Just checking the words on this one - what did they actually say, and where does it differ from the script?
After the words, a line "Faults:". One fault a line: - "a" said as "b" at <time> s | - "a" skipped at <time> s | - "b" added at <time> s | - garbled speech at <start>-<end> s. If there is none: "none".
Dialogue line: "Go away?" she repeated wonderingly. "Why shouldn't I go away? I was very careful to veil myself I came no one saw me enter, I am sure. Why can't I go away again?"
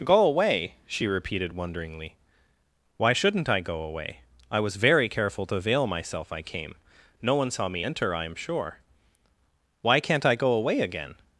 "Go away?" she repeated wonderingly. "Why shouldn't I go away? I was very careful to veil myself I came no one saw me enter, I am sure. Why can't I go away again?"
Faults:
none